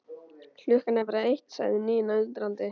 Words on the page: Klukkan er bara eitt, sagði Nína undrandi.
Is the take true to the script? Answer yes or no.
yes